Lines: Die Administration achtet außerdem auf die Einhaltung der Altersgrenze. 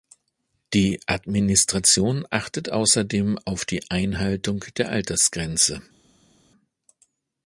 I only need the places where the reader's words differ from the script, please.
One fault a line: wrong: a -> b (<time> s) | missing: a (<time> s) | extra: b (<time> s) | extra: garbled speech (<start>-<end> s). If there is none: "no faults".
no faults